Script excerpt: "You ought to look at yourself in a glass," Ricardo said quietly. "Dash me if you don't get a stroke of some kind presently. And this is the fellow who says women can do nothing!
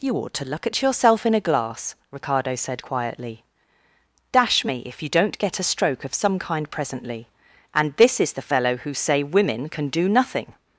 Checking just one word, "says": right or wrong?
wrong